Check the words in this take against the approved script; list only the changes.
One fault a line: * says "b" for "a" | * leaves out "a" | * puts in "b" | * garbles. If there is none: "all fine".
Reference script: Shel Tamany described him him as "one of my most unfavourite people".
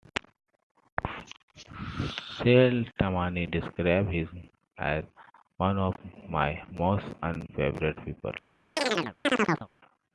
* leaves out "him"